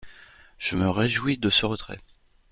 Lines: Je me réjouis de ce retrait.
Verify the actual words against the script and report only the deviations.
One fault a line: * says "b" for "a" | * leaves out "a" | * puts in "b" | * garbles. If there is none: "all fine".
all fine